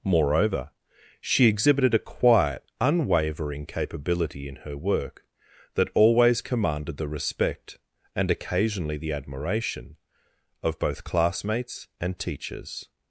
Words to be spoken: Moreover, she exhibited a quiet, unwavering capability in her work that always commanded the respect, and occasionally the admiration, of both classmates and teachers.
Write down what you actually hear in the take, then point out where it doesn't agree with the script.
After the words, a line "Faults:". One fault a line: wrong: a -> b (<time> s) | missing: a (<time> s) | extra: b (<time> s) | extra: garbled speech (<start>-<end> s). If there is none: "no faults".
Moreover, she exhibited a quiet, unwavering capability in her work that always commanded the respect, and occasionally the admiration, of both classmates and teachers.
Faults:
no faults